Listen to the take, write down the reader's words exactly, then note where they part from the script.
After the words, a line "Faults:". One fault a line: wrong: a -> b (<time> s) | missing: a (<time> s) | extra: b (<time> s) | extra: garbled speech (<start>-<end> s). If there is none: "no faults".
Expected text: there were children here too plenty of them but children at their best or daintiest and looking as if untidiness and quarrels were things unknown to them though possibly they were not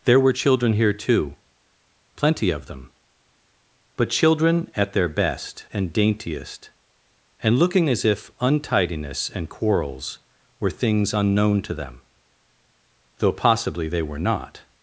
there were children here too plenty of them but children at their best and daintiest and looking as if untidiness and quarrels were things unknown to them though possibly they were not
Faults:
wrong: or -> and (5.7 s)